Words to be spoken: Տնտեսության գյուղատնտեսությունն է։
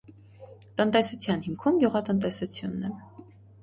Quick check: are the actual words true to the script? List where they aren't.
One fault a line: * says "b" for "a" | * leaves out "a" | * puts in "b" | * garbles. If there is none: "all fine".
* puts in "հիմքում"